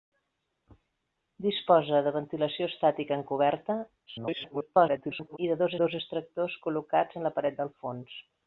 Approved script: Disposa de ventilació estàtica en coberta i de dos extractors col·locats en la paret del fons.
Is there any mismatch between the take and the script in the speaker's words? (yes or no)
yes